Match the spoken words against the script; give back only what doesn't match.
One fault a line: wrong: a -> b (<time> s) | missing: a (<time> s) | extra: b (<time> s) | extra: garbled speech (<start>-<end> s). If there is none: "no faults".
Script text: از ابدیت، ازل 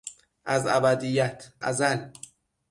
no faults